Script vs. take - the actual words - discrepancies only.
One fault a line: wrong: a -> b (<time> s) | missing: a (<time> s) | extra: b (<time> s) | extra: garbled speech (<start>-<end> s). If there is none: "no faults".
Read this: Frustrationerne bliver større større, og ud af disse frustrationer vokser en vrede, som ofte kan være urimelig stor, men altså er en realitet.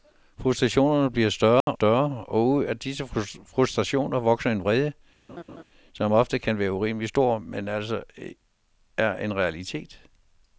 no faults